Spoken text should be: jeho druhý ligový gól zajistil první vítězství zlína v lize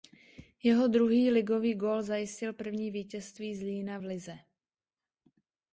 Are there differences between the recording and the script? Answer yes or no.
no